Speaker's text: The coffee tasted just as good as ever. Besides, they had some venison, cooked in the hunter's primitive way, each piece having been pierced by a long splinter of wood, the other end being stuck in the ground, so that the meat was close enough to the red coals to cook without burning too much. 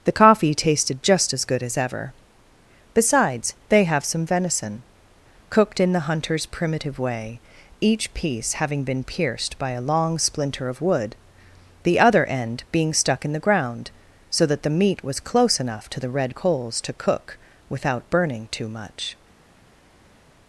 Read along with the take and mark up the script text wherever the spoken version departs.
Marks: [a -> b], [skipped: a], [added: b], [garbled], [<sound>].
The coffee tasted just as good as ever. Besides, they [had -> have] some venison, cooked in the hunter's primitive way, each piece having been pierced by a long splinter of wood, the other end being stuck in the ground, so that the meat was close enough to the red coals to cook without burning too much.